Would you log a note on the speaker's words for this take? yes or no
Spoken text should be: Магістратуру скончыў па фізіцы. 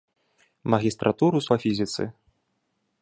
yes